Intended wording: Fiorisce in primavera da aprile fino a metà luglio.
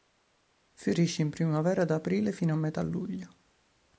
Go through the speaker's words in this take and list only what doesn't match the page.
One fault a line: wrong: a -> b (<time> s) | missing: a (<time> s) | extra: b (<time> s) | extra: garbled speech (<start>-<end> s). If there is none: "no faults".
no faults